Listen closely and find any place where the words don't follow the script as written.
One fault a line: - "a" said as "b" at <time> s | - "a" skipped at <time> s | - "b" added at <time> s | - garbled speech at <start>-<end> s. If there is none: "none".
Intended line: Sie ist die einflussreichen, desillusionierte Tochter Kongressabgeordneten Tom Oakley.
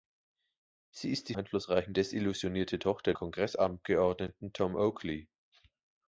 none